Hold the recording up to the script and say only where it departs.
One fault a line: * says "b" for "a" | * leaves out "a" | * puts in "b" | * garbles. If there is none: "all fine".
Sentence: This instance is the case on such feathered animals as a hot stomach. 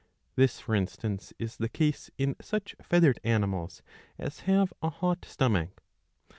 * puts in "for"
* says "in" for "on"
* puts in "have"